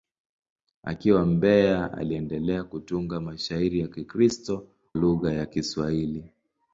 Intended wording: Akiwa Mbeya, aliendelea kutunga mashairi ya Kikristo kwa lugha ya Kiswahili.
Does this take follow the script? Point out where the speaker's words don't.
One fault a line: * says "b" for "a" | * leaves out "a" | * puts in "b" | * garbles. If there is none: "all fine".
* leaves out "kwa"